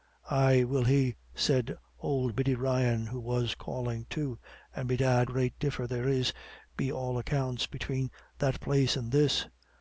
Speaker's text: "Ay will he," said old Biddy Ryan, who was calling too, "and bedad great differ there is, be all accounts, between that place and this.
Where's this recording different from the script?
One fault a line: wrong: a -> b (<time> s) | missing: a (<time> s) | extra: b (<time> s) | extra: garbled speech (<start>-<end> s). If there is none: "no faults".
no faults